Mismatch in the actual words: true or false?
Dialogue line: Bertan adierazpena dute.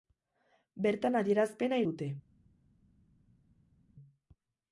false